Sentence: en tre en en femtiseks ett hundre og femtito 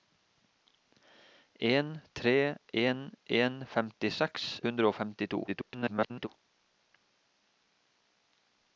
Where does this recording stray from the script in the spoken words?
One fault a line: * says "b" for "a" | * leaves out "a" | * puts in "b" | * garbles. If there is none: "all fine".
* leaves out "ett"
* garbles